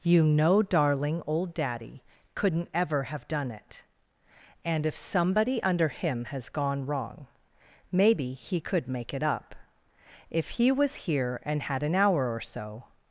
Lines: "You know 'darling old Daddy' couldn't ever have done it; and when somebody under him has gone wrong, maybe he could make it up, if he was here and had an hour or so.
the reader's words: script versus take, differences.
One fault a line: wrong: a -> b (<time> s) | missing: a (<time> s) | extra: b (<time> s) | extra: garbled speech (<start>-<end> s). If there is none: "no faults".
wrong: when -> if (4.8 s)